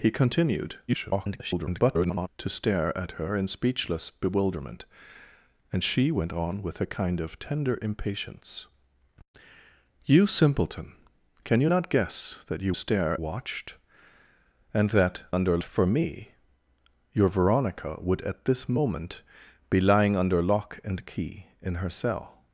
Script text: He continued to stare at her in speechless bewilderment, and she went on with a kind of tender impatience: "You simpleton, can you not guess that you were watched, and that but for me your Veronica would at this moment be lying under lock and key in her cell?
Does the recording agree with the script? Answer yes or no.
no